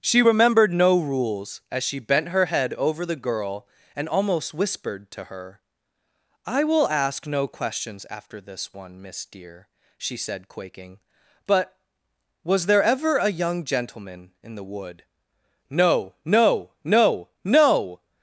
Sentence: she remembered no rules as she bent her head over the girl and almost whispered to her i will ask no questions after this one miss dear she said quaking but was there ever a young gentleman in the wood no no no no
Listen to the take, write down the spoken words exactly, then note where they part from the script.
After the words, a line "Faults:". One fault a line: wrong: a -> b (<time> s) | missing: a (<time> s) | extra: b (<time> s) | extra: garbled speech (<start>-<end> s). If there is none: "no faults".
she remembered no rules as she bent her head over the girl and almost whispered to her i will ask no questions after this one miss dear she said quaking but was there ever a young gentleman in the wood no no no no
Faults:
no faults